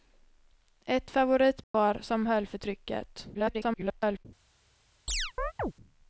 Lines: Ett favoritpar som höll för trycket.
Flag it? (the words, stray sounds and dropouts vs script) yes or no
yes